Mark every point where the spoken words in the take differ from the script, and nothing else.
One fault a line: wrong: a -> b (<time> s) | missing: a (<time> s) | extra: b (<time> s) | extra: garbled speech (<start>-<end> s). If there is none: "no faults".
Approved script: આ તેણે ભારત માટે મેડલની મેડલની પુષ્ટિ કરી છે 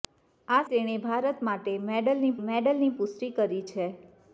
no faults